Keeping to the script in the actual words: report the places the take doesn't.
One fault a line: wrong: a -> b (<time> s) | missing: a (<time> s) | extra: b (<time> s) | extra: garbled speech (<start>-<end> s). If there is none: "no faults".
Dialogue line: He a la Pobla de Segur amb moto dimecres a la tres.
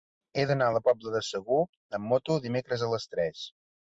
extra: d'anar (0.5 s)
wrong: la -> les (3.0 s)